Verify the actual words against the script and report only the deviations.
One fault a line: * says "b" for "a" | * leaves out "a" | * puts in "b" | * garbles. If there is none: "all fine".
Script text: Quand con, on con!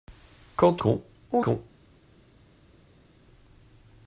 all fine